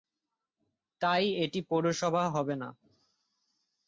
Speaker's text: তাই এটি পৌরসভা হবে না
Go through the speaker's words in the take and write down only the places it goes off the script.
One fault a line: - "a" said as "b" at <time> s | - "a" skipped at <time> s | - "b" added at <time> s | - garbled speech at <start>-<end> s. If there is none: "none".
none